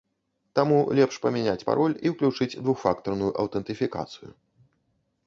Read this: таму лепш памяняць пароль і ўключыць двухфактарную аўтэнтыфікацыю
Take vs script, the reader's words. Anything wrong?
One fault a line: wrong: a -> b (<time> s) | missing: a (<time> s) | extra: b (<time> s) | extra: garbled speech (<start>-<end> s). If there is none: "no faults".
no faults